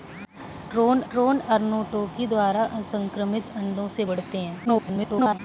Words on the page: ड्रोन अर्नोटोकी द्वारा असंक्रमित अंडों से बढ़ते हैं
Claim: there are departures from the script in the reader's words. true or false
true